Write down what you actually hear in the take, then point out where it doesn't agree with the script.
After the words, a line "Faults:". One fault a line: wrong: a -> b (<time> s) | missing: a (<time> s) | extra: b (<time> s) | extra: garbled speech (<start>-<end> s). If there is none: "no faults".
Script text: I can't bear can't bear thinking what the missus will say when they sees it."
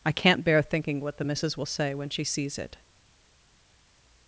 I can't bear thinking what the missus will say when she sees it."
Faults:
missing: can't bear (0.6 s)
wrong: they -> she (2.1 s)